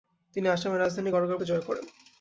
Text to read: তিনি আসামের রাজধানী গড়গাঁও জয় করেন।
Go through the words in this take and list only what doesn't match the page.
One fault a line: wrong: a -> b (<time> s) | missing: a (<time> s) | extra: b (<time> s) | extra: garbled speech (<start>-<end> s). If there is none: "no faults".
no faults